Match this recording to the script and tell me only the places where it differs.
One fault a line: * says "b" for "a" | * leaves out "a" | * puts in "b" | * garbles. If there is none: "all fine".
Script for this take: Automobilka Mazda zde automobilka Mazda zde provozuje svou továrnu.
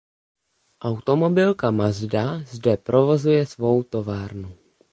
* leaves out "automobilka Mazda zde"